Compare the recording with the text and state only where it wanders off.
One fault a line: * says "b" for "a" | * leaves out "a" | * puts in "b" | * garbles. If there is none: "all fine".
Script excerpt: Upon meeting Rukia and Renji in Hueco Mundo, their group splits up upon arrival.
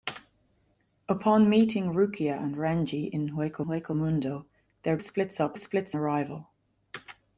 * puts in "Hueco"
* leaves out "group"
* says "splits" for "upon"